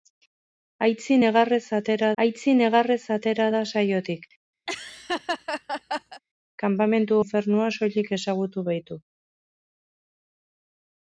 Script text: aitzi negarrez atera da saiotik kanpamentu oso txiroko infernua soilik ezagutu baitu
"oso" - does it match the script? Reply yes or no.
no